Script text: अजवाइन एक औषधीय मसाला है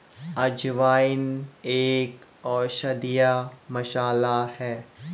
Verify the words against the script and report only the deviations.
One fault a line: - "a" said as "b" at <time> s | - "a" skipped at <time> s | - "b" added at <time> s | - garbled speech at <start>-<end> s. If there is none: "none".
none